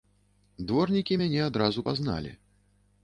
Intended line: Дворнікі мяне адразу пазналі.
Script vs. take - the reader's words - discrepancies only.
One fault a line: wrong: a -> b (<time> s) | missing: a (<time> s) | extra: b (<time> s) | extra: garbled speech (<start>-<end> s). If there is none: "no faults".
no faults